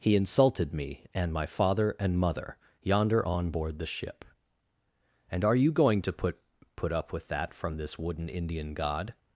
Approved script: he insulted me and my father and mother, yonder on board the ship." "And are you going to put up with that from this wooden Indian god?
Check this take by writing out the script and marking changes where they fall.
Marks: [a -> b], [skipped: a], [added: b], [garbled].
he insulted me and my father and mother, yonder on board the ship." "And are you going to put [added: put] up with that from this wooden Indian god?